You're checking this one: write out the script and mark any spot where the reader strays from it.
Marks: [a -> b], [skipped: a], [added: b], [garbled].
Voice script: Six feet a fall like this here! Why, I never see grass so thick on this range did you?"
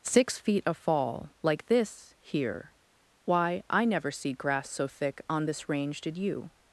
Six feet a fall like this here! Why, I never see grass so thick on this range did you?"